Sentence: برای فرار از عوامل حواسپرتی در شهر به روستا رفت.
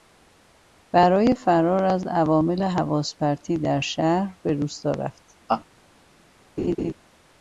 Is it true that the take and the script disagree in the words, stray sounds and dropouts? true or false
true